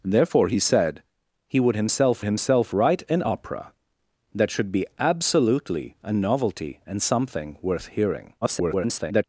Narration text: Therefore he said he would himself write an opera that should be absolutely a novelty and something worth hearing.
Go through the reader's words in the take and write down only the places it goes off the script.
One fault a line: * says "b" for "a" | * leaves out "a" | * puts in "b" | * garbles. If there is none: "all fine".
* puts in "himself"
* garbles